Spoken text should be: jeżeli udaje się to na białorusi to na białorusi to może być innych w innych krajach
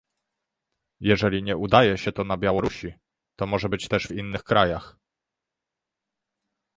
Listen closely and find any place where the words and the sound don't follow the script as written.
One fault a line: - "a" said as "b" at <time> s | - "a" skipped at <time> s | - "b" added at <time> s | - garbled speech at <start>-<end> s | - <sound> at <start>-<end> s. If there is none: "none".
- "nie" added at 1.4 s
- "na białorusi to" skipped at 3.5 s
- "innych" said as "też" at 3.9 s